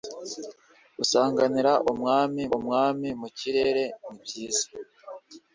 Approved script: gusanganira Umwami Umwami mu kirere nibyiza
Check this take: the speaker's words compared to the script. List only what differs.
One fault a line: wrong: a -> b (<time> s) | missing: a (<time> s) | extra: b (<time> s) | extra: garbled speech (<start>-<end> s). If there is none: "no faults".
no faults